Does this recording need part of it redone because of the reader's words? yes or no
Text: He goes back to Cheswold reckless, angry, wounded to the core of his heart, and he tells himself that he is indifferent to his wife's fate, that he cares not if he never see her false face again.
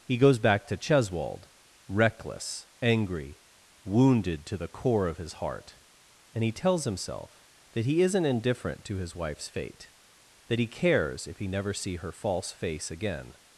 yes